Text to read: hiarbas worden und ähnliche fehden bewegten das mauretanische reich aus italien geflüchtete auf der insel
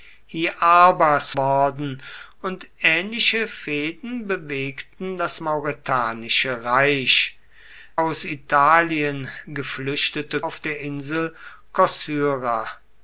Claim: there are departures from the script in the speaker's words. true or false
false